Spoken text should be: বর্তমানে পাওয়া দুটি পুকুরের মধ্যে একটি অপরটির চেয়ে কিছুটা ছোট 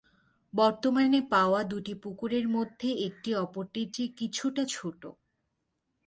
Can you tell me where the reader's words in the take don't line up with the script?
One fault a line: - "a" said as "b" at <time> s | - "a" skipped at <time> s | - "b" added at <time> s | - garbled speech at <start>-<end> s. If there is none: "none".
none